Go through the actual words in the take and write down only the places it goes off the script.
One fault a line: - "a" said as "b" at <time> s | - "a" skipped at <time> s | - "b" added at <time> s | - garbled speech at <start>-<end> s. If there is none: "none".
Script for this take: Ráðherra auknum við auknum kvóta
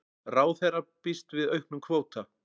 - "auknum" said as "býst" at 1.1 s